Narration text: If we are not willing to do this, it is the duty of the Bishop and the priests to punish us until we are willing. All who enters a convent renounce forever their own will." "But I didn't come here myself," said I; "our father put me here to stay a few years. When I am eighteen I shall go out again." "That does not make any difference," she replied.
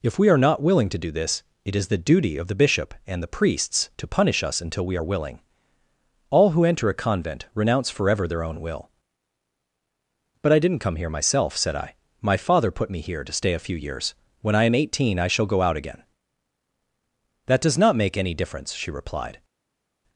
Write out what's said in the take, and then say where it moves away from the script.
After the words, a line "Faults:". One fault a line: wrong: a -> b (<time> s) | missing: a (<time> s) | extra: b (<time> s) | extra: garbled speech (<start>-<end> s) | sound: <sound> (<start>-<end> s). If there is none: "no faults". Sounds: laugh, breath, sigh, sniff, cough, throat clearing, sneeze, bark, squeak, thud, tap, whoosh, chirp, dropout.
If we are not willing to do this, it is the duty of the Bishop and the priests to punish us until we are willing. All who enter a convent renounce forever their own will." "But I didn't come here myself," said I; "my father put me here to stay a few years. When I am eighteen I shall go out again." "That does not make any difference," she replied.
Faults:
wrong: enters -> enter (6.6 s)
wrong: our -> my (12.2 s)